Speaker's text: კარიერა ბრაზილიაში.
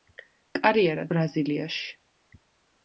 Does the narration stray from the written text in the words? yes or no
no